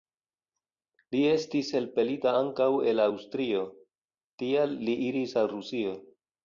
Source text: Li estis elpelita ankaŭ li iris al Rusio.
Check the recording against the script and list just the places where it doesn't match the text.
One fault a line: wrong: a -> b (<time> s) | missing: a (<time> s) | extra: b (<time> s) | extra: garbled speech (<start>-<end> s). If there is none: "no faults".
extra: el Aŭstrio tial (2.9 s)